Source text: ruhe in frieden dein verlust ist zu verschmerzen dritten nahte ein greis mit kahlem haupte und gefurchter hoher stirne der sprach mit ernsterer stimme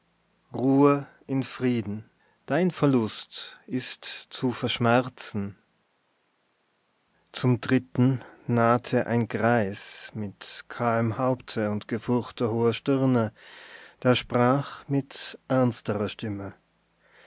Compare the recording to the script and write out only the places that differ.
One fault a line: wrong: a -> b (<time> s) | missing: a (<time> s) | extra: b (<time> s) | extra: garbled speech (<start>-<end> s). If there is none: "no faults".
extra: zum (7.3 s)